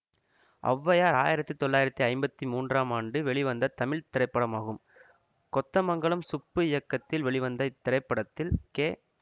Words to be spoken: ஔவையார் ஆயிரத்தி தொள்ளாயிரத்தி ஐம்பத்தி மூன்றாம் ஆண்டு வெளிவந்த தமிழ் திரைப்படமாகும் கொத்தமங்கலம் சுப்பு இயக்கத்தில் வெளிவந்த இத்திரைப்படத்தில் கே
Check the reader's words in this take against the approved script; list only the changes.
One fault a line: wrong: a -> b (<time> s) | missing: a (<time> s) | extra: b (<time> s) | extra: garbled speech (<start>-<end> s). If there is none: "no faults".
no faults